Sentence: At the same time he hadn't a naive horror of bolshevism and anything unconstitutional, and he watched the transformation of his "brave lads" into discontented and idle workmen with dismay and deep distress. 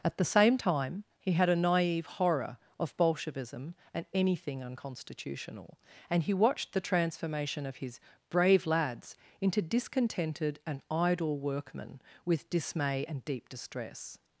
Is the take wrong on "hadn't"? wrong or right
wrong